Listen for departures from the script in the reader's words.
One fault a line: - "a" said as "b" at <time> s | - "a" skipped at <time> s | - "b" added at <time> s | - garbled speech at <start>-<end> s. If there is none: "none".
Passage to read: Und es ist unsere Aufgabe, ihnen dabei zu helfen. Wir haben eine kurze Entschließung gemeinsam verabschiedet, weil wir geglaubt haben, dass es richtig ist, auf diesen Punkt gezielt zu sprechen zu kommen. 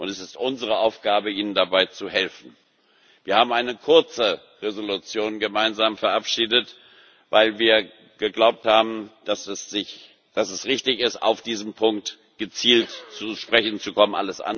none